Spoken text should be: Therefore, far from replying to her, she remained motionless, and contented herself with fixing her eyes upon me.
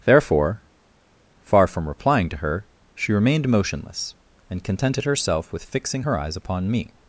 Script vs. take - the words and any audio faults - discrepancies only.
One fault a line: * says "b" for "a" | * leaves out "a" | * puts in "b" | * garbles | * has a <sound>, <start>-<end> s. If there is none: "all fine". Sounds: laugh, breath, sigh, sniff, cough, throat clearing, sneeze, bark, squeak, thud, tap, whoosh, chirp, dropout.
all fine